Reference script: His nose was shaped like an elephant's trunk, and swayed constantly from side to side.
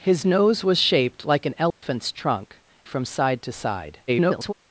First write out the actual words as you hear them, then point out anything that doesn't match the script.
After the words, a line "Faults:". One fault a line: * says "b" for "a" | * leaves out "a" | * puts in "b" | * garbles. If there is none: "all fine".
His nose was shaped like an elephant's trunk, from side to side. [garbled]
Faults:
* leaves out "and swayed constantly"
* garbles